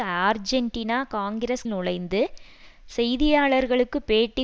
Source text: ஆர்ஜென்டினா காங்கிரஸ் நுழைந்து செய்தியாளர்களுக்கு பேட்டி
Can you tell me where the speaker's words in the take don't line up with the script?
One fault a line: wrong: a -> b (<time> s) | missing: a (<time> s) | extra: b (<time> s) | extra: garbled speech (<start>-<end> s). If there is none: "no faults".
no faults